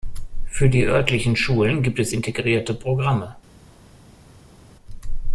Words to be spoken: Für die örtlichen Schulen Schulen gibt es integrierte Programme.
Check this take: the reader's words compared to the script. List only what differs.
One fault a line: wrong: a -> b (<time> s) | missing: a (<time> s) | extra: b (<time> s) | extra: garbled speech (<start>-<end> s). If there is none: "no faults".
missing: Schulen (1.8 s)